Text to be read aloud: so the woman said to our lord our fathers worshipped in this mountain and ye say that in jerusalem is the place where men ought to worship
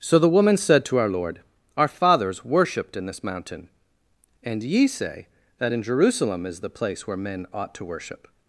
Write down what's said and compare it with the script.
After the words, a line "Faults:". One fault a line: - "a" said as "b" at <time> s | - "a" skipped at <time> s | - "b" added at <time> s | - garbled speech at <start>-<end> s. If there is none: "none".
so the woman said to our lord our fathers worshipped in this mountain and ye say that in jerusalem is the place where men ought to worship
Faults:
none